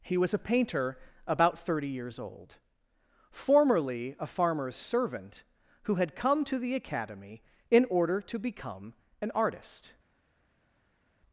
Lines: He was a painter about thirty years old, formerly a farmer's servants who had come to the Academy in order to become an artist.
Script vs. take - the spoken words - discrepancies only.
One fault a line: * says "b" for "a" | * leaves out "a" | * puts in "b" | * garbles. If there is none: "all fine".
* says "servant" for "servants"